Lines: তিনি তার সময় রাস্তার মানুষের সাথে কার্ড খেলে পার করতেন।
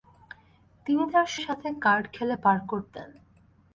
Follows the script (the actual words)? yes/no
no